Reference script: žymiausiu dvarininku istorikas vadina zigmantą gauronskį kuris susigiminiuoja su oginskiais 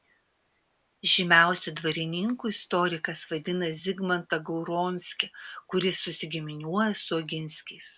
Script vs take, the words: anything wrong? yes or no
no